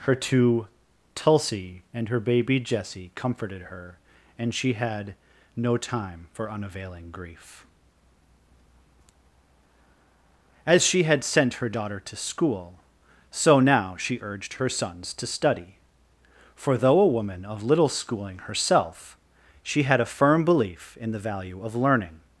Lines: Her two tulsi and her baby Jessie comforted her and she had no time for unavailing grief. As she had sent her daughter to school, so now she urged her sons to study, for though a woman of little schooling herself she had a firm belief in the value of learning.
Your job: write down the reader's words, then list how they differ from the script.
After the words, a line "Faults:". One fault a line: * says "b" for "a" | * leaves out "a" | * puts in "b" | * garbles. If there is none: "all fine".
Her two tulsi and her baby Jessie comforted her and she had no time for unavailing grief. As she had sent her daughter to school, so now she urged her sons to study, for though a woman of little schooling herself she had a firm belief in the value of learning.
Faults:
all fine